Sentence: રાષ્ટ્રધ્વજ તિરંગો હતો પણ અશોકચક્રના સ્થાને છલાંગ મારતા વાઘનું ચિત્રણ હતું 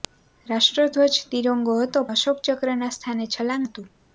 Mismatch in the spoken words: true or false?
true